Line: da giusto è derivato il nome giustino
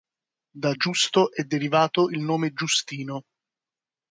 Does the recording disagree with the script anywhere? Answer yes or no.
no